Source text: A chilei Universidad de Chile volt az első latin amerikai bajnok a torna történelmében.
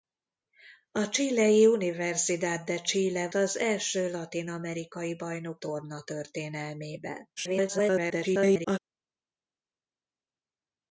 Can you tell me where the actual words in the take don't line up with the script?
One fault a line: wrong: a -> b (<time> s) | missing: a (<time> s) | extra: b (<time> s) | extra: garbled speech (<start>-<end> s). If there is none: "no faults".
missing: volt (3.3 s)
missing: a (5.6 s)
extra: garbled speech (7.4-8.8 s)